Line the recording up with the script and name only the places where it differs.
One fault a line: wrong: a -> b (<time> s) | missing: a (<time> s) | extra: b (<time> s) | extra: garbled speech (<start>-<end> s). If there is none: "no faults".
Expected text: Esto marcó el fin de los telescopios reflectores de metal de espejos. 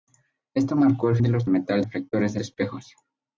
missing: fin (1.2 s)
wrong: telescopios -> metal (1.5 s)
missing: metal (2.4 s)